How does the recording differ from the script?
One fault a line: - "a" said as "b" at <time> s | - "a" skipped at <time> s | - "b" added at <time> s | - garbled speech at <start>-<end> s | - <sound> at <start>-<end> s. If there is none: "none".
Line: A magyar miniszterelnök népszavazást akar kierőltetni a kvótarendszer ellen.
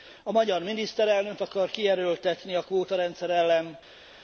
- "népszavazást" skipped at 1.4 s